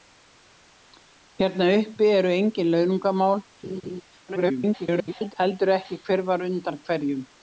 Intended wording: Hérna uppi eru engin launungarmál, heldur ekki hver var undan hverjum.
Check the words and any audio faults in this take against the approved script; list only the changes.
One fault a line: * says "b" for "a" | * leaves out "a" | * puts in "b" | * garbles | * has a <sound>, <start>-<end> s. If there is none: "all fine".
* has a laugh, 3.6-4.0 s
* garbles